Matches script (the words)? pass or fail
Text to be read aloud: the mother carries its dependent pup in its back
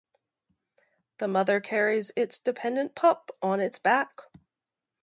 fail